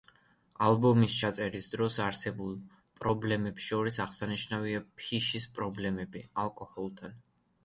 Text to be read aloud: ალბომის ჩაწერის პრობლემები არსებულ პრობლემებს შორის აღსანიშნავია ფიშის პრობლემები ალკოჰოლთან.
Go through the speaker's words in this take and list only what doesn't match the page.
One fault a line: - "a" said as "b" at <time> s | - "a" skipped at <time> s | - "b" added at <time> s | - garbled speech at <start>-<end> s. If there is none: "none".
- "პრობლემები" said as "დროს" at 1.7 s